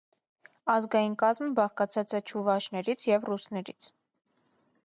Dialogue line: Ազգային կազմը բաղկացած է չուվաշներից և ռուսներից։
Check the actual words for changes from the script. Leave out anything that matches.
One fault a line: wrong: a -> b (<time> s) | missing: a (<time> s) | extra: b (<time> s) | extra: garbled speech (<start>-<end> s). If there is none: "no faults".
no faults